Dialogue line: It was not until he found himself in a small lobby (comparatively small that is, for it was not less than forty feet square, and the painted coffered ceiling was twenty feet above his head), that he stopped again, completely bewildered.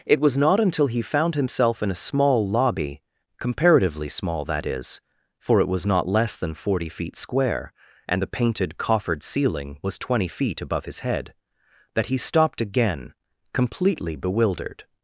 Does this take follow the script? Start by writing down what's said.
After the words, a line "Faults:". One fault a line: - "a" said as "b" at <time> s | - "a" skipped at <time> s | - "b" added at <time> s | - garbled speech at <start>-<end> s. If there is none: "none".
It was not until he found himself in a small lobby (comparatively small that is, for it was not less than forty feet square, and the painted coffered ceiling was twenty feet above his head), that he stopped again, completely bewildered.
Faults:
none